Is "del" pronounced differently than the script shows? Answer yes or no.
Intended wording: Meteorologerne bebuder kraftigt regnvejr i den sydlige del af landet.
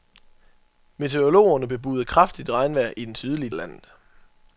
yes